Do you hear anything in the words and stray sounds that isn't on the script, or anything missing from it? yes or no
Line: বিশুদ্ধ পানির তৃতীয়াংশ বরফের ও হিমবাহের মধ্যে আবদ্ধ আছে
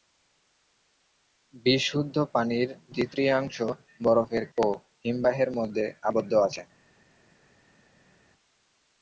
no